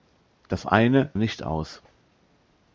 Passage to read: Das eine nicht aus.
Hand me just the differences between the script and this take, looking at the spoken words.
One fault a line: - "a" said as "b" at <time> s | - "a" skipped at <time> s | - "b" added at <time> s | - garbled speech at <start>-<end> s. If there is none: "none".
none